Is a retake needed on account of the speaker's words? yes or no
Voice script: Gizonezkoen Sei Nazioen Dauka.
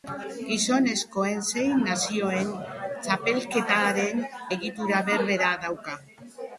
yes